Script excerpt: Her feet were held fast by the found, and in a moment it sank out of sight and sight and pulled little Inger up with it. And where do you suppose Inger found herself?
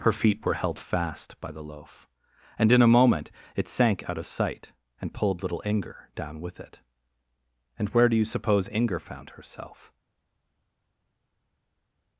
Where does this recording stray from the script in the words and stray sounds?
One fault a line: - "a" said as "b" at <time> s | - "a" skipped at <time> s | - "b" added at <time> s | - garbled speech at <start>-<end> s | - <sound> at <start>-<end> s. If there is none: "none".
- "found" said as "loaf" at 1.6 s
- "sight and" skipped at 5.1 s
- "up" said as "down" at 6.2 s